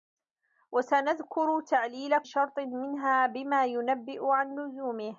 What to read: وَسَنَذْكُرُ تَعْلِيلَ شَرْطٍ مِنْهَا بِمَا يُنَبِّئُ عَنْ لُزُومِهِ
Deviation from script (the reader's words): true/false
false